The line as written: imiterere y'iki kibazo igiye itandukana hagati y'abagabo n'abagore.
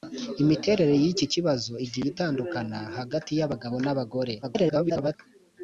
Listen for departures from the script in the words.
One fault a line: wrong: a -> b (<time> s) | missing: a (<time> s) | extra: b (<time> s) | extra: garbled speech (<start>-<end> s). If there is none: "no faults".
extra: garbled speech (4.4-5.2 s)